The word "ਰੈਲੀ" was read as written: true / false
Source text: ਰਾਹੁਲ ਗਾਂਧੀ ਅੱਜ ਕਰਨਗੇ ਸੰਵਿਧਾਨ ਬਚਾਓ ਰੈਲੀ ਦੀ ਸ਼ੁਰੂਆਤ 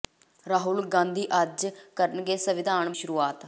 false